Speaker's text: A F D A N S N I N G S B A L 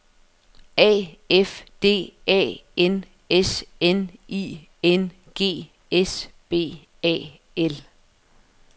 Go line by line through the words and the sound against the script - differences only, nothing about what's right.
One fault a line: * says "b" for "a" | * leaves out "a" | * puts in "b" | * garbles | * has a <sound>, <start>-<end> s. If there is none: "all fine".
all fine